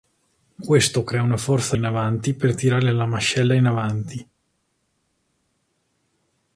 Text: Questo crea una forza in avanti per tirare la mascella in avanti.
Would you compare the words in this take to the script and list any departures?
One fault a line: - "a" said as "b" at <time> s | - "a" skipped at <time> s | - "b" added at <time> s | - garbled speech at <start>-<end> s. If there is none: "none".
none